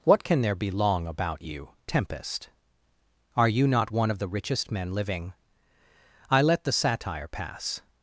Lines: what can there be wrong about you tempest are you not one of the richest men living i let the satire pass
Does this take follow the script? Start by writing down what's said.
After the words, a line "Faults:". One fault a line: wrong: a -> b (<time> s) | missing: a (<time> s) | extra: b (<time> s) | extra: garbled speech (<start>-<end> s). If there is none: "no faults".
what can there be long about you tempest are you not one of the richest men living i let the satire pass
Faults:
wrong: wrong -> long (0.7 s)